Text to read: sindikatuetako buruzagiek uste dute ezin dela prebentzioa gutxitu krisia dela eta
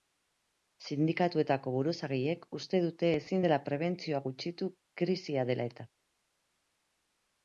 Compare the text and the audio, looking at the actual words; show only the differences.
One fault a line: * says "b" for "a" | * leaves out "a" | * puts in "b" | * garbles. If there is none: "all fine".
all fine